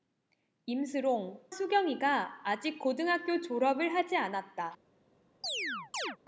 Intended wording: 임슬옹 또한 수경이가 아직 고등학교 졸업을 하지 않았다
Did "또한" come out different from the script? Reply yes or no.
yes